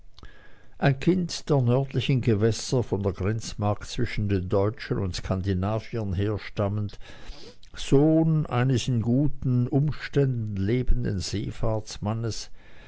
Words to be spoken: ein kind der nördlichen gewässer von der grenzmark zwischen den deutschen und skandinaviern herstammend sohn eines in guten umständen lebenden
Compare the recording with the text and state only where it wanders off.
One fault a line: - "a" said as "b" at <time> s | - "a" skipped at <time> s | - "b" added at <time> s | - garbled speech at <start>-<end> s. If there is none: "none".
none